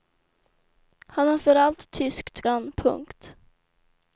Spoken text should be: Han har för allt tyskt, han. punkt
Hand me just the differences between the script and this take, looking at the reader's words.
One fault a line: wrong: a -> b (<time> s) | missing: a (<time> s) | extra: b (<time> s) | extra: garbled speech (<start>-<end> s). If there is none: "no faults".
no faults